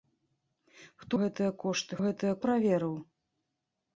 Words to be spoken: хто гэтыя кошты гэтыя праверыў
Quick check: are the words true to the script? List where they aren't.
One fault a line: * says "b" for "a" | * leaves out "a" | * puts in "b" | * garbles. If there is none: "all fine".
all fine